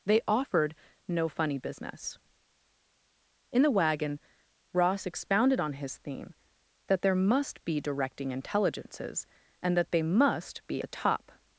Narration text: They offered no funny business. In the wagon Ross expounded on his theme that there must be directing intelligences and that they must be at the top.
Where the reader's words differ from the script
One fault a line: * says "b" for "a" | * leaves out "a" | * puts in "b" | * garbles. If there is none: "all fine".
* leaves out "at"